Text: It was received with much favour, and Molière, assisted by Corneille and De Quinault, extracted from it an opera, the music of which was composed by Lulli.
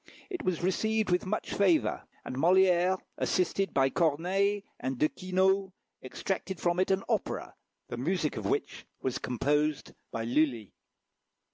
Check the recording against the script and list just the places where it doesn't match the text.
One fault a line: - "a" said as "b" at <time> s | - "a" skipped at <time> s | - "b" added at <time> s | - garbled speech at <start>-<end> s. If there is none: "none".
none